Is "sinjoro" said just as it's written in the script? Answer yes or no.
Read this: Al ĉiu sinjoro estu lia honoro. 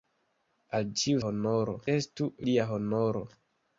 no